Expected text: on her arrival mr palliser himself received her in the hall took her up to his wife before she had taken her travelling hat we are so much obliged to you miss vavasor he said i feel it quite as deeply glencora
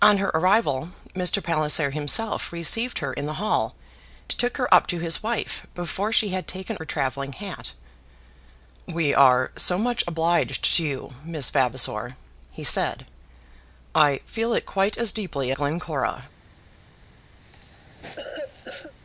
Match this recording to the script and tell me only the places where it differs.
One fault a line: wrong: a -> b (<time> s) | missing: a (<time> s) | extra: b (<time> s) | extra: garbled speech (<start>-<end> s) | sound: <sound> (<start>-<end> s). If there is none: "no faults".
sound: cough (17.4-18.9 s)